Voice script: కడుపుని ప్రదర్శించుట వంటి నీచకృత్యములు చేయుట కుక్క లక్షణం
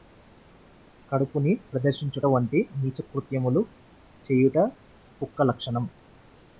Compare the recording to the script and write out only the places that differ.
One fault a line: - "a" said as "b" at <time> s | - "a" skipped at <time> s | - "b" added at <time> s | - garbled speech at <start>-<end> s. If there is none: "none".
none